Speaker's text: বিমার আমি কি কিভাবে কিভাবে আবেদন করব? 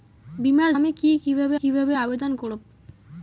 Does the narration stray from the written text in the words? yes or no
no